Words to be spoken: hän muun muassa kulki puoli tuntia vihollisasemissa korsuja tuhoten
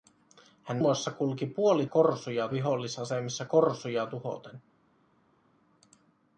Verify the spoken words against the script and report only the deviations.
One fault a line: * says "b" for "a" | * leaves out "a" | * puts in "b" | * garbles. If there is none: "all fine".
* leaves out "muun"
* says "korsuja" for "tuntia"